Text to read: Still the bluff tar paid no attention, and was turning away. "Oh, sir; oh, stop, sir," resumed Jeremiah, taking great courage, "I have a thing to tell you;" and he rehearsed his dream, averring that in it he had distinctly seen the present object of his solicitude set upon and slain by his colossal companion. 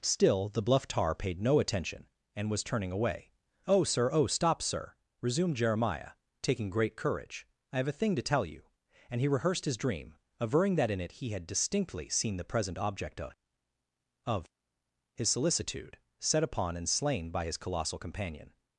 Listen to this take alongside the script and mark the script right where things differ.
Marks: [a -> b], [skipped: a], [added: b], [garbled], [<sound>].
Still the bluff tar paid no attention, and was turning away. "Oh, sir; oh, stop, sir," resumed Jeremiah, taking great courage, "I have a thing to tell you;" and he rehearsed his dream, averring that in it he had distinctly seen the present object of [added: of] his solicitude set upon and slain by his colossal companion.